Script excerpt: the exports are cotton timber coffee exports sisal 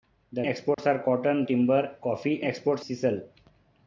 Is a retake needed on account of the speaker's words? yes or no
no